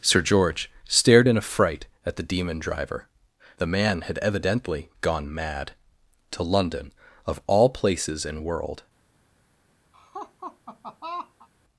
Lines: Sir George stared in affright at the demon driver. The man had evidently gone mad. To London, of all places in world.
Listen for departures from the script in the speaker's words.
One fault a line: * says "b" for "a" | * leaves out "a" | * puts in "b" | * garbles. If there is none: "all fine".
all fine